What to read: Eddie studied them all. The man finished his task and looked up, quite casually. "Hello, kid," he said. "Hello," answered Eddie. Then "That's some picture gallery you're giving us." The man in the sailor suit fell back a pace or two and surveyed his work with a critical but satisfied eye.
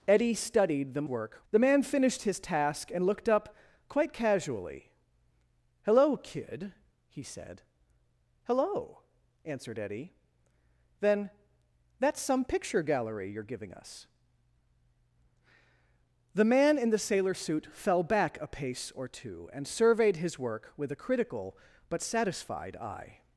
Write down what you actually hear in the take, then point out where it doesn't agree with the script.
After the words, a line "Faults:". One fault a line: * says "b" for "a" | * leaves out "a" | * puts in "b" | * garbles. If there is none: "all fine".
Eddie studied them work. The man finished his task and looked up, quite casually. "Hello, kid," he said. "Hello," answered Eddie. Then "That's some picture gallery you're giving us." The man in the sailor suit fell back a pace or two and surveyed his work with a critical but satisfied eye.
Faults:
* says "work" for "all"